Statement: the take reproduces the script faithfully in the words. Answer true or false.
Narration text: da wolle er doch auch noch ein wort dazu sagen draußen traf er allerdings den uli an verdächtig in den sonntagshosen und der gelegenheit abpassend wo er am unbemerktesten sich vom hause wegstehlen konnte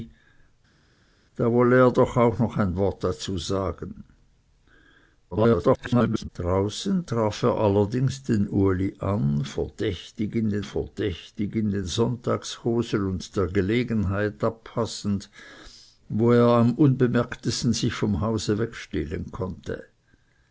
false